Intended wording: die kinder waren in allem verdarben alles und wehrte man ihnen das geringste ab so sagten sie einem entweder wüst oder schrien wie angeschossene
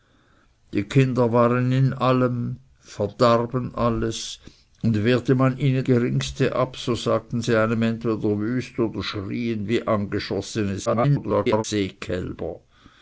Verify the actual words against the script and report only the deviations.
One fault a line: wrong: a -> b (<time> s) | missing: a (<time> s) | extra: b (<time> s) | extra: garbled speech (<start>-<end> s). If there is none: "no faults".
missing: das (5.8 s)
extra: garbled speech (10.9-11.6 s)